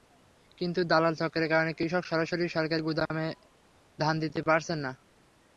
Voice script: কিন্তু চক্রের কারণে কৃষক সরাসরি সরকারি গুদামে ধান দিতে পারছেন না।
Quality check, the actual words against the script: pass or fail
fail